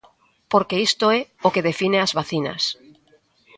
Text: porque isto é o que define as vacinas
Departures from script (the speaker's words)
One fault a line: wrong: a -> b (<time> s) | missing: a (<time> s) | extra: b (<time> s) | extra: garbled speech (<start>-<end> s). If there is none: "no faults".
no faults